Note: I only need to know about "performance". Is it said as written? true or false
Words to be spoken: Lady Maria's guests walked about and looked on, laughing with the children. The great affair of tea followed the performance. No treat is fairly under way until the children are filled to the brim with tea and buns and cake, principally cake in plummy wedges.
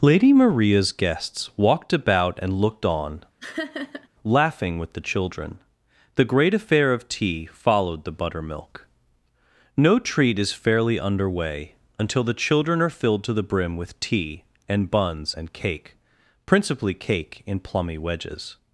false